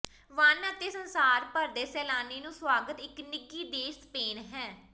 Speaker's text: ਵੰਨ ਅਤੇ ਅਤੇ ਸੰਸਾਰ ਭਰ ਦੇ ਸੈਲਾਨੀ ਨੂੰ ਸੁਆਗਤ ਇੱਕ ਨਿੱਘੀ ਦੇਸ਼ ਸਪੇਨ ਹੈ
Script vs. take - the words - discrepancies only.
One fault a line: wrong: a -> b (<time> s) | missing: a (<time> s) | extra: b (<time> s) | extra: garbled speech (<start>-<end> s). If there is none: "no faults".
missing: ਅਤੇ (0.9 s)